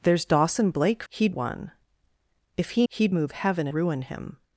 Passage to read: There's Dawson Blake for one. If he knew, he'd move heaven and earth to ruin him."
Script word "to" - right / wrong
wrong